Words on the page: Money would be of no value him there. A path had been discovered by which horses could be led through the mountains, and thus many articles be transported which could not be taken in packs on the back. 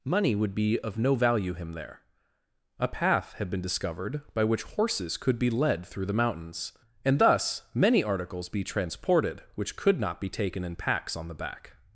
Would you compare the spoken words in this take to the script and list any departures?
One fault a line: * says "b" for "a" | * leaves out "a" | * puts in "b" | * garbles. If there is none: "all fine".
all fine